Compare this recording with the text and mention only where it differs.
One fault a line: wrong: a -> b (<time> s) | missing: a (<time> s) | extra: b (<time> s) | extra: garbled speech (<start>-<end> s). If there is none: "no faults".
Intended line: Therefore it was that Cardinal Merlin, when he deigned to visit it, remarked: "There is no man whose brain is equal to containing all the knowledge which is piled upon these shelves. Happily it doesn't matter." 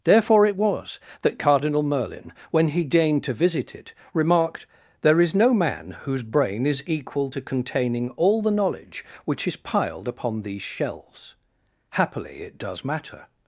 wrong: doesn't -> does (12.6 s)